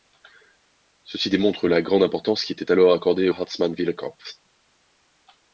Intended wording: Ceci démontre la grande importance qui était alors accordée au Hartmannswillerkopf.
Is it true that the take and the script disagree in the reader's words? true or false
true